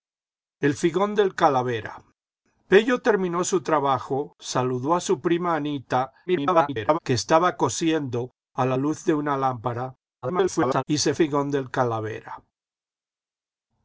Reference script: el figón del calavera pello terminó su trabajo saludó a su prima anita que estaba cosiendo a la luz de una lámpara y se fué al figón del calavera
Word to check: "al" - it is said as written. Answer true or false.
false